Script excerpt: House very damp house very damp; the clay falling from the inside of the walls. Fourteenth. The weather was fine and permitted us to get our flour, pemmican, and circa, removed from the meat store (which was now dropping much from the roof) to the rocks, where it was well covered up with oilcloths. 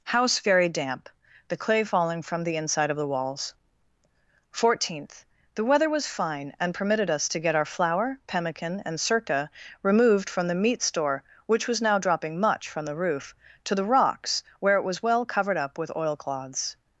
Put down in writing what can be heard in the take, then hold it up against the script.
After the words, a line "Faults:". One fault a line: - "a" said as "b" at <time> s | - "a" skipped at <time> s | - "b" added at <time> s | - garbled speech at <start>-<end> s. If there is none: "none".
House very damp; the clay falling from the inside of the walls. Fourteenth. The weather was fine and permitted us to get our flour, pemmican, and circa, removed from the meat store (which was now dropping much from the roof) to the rocks, where it was well covered up with oilcloths.
Faults:
- "house very damp" skipped at 1.1 s